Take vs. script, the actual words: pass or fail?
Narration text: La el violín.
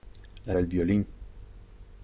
pass